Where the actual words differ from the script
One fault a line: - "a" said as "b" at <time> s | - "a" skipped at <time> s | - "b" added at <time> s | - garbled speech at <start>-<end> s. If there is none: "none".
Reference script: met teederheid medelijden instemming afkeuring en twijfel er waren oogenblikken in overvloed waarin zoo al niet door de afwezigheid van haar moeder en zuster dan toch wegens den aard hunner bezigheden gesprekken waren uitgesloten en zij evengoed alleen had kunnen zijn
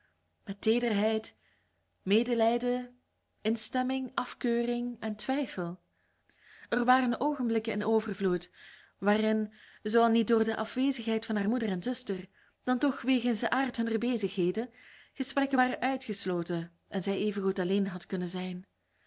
none